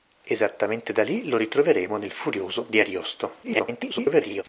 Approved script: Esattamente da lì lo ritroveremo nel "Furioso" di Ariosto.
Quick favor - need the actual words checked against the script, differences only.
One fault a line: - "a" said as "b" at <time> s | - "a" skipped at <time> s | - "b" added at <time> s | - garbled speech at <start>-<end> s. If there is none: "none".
- garbled speech at 3.4-4.4 s